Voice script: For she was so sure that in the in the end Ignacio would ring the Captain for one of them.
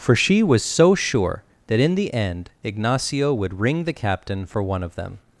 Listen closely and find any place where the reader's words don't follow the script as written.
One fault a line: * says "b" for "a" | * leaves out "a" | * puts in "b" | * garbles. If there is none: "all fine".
* leaves out "in the"